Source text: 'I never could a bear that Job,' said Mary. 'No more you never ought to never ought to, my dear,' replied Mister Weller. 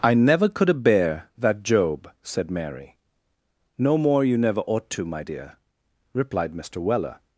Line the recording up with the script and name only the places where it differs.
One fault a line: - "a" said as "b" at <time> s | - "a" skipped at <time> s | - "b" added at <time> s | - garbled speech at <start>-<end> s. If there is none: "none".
- "never ought to" skipped at 5.0 s